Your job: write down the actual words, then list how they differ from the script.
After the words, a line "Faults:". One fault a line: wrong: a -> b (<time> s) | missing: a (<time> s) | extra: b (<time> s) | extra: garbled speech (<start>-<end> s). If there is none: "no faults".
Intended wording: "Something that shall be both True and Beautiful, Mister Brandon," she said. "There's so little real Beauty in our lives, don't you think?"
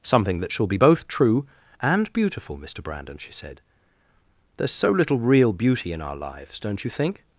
"Something that shall be both True and Beautiful, Mister Brandon," she said. "There's so little real Beauty in our lives, don't you think?"
Faults:
no faults